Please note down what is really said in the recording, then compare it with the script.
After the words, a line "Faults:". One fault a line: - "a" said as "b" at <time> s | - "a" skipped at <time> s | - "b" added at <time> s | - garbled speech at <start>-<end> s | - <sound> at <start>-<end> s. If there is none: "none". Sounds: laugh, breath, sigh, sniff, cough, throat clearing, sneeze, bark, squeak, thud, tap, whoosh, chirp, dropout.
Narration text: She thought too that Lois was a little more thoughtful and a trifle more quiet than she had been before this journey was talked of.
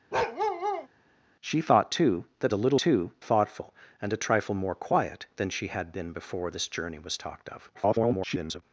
She thought too that A little too thoughtful and a trifle more quiet than she had been before this journey was talked of. [garbled]
Faults:
- bark at 0.1-0.9 s
- "Lois was" skipped at 2.5 s
- "more" said as "too" at 2.8 s
- garbled speech at 7.7-8.6 s